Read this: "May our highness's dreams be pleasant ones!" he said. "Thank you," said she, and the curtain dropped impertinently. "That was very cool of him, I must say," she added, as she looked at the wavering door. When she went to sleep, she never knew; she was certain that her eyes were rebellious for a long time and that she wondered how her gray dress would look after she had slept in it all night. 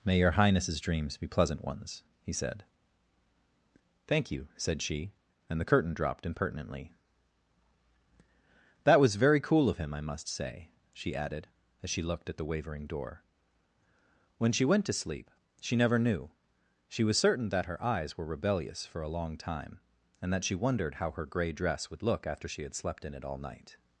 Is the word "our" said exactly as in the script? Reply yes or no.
no